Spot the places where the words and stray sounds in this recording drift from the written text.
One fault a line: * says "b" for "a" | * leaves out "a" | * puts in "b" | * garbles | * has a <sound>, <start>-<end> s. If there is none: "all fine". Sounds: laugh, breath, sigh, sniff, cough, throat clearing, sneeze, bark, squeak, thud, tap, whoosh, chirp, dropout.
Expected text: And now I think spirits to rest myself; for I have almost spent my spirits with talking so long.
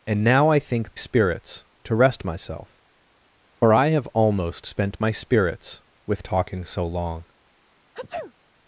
* has a sneeze, 7.9-8.3 s